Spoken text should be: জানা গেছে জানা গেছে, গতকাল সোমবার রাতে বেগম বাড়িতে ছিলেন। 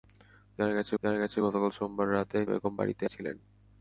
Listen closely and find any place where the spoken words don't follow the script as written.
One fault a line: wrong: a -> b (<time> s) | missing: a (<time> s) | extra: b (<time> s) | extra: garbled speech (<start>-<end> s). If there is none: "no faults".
no faults